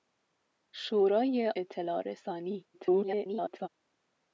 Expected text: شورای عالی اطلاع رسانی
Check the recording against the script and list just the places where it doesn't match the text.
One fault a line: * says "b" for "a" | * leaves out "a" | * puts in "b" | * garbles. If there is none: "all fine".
* leaves out "عالی"
* garbles